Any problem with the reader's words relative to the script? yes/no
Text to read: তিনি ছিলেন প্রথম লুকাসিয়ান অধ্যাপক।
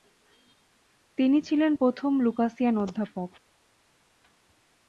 no